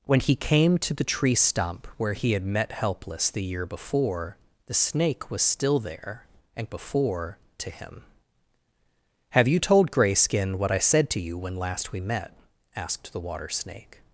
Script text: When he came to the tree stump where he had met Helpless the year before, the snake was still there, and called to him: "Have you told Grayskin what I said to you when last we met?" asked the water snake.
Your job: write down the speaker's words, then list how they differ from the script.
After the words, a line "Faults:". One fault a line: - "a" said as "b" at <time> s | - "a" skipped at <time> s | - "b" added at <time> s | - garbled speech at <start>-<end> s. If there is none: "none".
When he came to the tree stump where he had met Helpless the year before, the snake was still there, and before to him: "Have you told Grayskin what I said to you when last we met?" asked the water snake.
Faults:
- "called" said as "before" at 6.7 s